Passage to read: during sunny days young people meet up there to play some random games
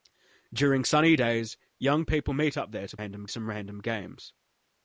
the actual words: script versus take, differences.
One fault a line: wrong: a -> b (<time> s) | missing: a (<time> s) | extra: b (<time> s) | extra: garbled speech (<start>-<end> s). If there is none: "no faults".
wrong: play -> random (2.9 s)